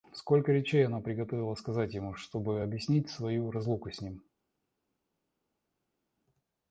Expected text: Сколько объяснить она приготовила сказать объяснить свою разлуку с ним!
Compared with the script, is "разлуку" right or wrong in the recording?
right